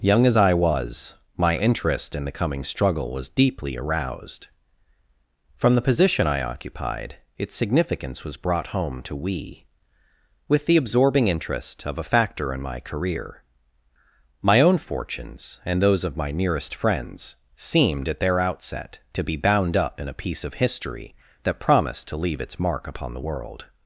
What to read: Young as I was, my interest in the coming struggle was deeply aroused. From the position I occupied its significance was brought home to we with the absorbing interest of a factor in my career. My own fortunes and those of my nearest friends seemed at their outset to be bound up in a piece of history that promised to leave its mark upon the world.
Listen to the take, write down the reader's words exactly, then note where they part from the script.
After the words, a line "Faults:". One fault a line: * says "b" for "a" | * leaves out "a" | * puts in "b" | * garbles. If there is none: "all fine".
Young as I was, my interest in the coming struggle was deeply aroused. From the position I occupied its significance was brought home to we with the absorbing interest of a factor in my career. My own fortunes and those of my nearest friends seemed at their outset to be bound up in a piece of history that promised to leave its mark upon the world.
Faults:
all fine